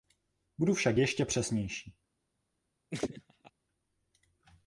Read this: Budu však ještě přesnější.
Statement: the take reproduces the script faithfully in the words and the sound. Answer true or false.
false